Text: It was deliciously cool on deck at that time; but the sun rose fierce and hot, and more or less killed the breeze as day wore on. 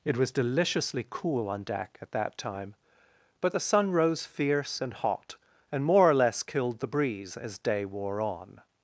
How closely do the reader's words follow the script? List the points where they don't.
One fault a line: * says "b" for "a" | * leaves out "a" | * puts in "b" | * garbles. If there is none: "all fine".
all fine